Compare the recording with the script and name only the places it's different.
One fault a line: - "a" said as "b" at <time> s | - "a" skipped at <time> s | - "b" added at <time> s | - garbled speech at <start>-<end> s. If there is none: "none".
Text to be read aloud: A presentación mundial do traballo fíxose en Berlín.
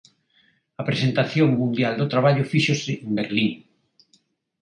none